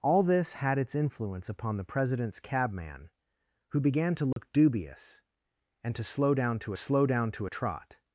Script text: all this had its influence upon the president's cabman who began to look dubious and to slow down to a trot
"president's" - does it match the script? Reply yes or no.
yes